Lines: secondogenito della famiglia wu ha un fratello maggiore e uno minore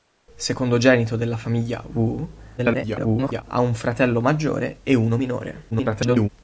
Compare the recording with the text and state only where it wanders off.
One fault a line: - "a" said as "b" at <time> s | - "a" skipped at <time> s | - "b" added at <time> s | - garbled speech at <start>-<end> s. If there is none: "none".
- garbled speech at 2.6-3.4 s
- garbled speech at 5.7-6.3 s